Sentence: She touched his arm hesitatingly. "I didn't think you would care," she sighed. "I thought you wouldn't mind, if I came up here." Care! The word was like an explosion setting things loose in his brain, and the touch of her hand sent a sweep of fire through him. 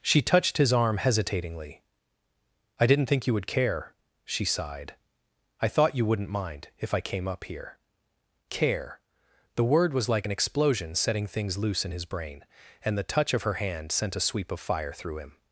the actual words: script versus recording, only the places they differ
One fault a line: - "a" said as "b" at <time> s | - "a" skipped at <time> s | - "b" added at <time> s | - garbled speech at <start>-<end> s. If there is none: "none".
none